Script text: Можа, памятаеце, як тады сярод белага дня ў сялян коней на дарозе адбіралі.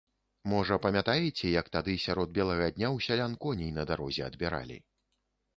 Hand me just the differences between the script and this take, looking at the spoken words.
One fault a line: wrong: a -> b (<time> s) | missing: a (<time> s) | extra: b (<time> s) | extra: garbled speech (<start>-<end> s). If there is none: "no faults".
no faults